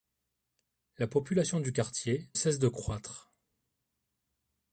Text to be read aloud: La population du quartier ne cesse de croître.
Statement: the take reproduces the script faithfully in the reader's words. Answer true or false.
false